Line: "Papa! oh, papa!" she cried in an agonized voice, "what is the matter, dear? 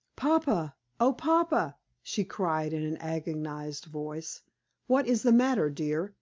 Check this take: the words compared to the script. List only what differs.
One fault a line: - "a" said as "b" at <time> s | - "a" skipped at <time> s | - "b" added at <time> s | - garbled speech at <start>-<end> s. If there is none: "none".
none